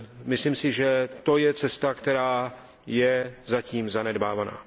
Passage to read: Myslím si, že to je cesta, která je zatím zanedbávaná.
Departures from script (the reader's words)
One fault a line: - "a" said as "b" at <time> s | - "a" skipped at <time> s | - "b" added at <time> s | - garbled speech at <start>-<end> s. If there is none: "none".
none